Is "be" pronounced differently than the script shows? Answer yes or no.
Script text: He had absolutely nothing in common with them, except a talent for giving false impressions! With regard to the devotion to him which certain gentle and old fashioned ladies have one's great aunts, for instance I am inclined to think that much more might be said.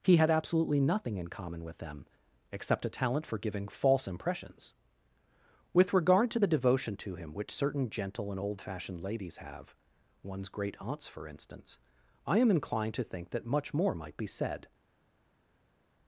no